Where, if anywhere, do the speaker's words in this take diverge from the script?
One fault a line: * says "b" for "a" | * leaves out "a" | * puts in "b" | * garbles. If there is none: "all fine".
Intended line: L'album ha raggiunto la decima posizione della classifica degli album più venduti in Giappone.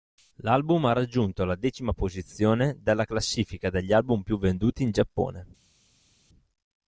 all fine